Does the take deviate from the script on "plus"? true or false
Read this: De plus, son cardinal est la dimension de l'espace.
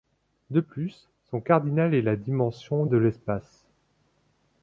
false